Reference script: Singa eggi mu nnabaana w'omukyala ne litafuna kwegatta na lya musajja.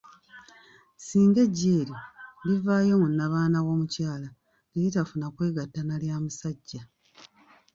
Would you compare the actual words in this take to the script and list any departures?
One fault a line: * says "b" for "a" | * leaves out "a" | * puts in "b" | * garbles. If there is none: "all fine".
* puts in "eryo livaayo"